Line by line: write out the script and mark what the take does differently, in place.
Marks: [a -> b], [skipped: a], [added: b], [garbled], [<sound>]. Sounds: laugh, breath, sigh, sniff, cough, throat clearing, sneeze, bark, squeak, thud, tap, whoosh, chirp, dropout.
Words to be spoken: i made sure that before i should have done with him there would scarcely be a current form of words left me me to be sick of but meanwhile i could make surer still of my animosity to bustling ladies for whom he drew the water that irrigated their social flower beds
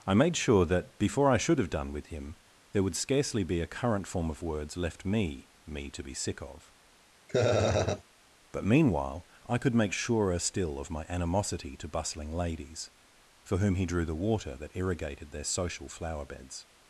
i made sure that before i should have done with him there would scarcely be a current form of words left me me to be sick of [laugh] but meanwhile i could make surer still of my animosity to bustling ladies for whom he drew the water that irrigated their social flower beds